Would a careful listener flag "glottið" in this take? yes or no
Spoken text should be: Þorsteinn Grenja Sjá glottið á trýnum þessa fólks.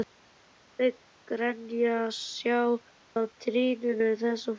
yes